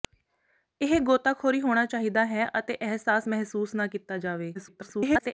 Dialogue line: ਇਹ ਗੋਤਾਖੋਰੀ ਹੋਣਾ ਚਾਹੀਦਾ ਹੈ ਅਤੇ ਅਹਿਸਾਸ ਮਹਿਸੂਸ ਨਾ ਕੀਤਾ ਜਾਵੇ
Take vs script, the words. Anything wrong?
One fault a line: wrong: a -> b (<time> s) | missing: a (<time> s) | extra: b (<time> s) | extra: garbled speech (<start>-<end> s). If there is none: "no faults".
extra: garbled speech (4.5-5.3 s)